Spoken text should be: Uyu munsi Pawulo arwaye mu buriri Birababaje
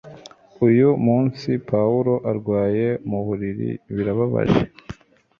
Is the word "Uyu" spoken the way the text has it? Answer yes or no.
yes